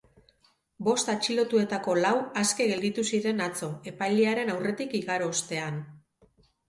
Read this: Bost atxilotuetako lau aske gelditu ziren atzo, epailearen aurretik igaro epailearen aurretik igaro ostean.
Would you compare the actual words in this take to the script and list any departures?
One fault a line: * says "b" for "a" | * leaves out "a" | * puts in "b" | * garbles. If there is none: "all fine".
* leaves out "epailearen aurretik igaro"